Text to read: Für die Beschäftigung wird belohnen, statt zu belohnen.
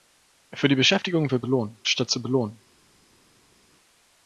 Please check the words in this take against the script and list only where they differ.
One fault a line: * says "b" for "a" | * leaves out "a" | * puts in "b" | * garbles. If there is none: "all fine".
all fine